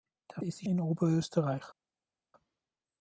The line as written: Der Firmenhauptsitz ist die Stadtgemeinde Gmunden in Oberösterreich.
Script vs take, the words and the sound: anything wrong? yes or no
yes